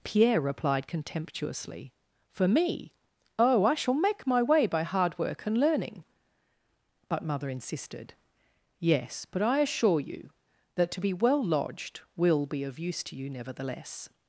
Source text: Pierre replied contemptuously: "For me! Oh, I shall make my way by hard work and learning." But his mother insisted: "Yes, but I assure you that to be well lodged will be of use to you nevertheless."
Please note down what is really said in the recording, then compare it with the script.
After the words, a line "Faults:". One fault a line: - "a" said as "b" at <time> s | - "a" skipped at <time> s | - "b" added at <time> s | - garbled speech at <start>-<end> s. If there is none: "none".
Pierre replied contemptuously: "For me! Oh, I shall make my way by hard work and learning." But mother insisted: "Yes, but I assure you that to be well lodged will be of use to you nevertheless."
Faults:
- "his" skipped at 7.2 s